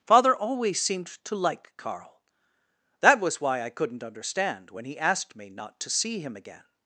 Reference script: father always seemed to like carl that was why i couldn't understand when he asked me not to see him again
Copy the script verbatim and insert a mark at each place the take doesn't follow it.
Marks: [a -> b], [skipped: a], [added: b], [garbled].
father always seemed to like carl that was why i couldn't understand when he asked me not to see him again